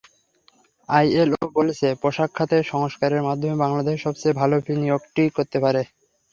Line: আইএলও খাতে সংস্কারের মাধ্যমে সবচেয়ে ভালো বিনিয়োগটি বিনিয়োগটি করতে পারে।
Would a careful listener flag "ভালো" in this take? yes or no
no